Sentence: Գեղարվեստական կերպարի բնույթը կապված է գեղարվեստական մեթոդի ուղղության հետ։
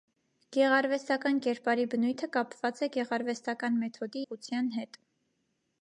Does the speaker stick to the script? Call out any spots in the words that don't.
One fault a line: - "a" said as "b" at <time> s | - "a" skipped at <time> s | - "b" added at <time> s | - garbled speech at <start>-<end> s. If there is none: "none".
none